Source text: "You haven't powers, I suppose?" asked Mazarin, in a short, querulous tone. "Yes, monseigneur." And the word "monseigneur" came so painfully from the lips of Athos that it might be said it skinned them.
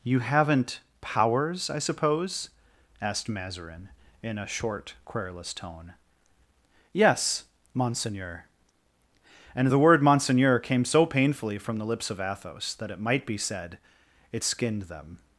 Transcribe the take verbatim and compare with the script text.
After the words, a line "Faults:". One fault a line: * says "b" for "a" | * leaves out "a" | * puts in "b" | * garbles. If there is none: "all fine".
"You haven't powers, I suppose?" asked Mazarin, in a short, querulous tone. "Yes, monseigneur." And the word "monseigneur" came so painfully from the lips of Athos that it might be said it skinned them.
Faults:
all fine